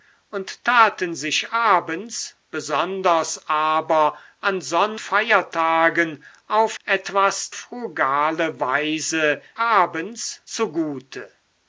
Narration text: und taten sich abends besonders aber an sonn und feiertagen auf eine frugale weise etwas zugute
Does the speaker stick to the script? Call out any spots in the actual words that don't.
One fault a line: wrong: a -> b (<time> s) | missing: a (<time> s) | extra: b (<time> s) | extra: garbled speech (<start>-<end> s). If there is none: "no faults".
missing: und (5.0 s)
wrong: eine -> etwas (6.8 s)
wrong: etwas -> abends (9.6 s)